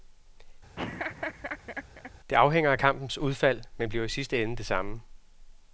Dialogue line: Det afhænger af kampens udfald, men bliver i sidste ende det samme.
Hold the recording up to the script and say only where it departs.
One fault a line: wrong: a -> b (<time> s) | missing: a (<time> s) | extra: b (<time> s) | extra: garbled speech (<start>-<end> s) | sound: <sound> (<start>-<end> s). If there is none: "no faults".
sound: laugh (0.8-2.1 s)